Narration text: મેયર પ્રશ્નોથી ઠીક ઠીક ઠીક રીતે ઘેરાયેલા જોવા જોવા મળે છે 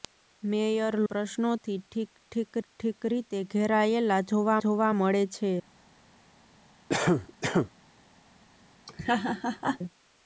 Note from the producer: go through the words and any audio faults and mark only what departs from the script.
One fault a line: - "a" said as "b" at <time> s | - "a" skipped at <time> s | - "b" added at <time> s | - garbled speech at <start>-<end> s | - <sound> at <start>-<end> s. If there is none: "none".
- cough at 6.9-7.7 s
- laugh at 8.9-9.8 s